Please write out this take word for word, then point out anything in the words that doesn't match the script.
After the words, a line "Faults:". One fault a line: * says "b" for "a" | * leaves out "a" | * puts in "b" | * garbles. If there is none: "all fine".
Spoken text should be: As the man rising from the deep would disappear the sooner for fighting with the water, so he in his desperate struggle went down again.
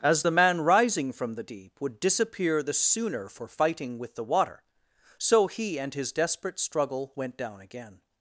As the man rising from the deep would disappear the sooner for fighting with the water, so he and his desperate struggle went down again.
Faults:
* says "and" for "in"